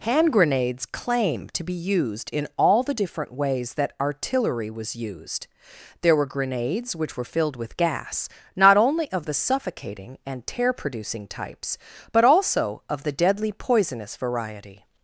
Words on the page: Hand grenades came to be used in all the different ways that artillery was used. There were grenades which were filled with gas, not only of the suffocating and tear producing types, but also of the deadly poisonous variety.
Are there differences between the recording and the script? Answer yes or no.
yes